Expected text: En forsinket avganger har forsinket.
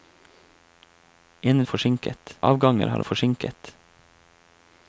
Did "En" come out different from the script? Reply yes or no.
no